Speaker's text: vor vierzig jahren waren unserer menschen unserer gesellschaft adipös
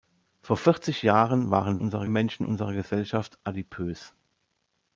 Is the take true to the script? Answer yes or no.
yes